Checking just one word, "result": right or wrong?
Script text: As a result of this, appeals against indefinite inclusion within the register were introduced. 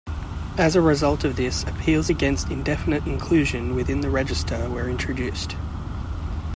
right